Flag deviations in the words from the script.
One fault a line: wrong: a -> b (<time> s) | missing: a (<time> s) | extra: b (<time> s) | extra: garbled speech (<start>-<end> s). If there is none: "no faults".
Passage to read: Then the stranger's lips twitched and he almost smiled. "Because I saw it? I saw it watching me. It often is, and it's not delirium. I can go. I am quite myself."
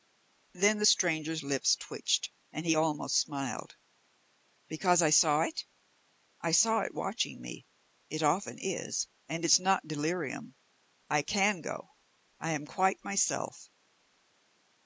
no faults